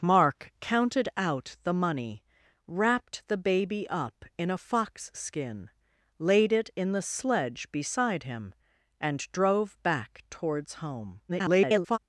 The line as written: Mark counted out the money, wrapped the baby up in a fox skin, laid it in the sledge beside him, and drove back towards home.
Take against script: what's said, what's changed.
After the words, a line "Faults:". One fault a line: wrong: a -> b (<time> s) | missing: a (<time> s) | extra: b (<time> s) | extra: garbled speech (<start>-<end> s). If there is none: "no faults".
Mark counted out the money, wrapped the baby up in a fox skin, laid it in the sledge beside him, and drove back towards home. [garbled]
Faults:
extra: garbled speech (11.3-12.0 s)